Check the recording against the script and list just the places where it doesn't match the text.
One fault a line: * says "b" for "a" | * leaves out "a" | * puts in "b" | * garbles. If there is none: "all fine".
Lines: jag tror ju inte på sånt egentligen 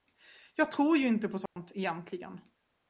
all fine